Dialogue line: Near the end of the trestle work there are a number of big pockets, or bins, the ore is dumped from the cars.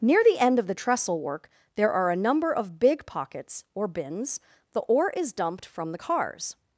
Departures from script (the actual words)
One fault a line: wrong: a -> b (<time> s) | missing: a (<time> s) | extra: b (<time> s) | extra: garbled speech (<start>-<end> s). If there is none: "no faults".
no faults